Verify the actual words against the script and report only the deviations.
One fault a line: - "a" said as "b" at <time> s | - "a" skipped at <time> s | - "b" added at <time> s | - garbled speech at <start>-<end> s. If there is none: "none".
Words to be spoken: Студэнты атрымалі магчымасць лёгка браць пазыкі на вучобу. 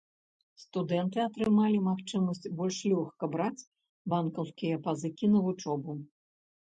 - "больш" added at 2.6 s
- "банкаўскія" added at 4.2 s